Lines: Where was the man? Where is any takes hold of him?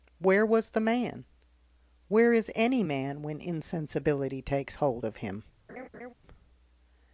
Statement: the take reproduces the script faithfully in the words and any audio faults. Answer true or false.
false